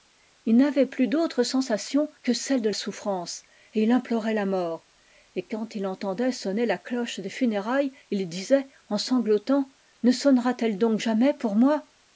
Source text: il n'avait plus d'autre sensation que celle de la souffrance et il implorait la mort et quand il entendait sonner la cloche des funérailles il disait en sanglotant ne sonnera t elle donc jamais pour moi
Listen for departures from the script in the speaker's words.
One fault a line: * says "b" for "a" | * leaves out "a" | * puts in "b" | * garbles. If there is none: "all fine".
* leaves out "la"